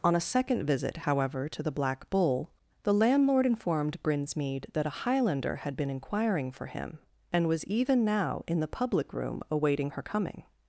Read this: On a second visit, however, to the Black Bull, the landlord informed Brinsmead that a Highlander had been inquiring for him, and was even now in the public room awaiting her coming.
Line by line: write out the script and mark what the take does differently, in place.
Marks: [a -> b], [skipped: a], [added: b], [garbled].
On a second visit, however, to the Black Bull, the landlord informed Brinsmead that a Highlander had been inquiring for him, and was even now in the public room awaiting her coming.